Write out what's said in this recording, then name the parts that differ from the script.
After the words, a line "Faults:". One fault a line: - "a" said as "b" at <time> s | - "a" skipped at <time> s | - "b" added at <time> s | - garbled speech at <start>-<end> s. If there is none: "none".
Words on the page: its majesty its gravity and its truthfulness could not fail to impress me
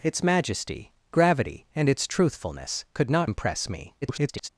its majesty gravity and its truthfulness could not impress me [garbled]
Faults:
- "its" skipped at 0.9 s
- "fail to" skipped at 3.3 s
- garbled speech at 4.0-4.5 s